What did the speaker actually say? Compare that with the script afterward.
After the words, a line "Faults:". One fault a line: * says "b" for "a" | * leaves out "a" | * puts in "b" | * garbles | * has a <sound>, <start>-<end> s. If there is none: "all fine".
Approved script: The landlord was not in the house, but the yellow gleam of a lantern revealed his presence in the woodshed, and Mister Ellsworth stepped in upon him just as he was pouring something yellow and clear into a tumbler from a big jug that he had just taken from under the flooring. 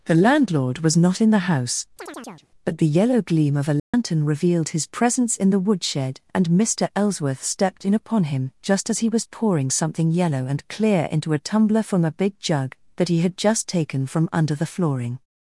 The landlord was not in the house, but the yellow gleam of a lantern revealed his presence in the woodshed, and Mister Ellsworth stepped in upon him just as he was pouring something yellow and clear into a tumbler from a big jug that he had just taken from under the flooring.
Faults:
* has a chirp, 2.0-2.5 s
* has a dropout, 3.8-3.9 s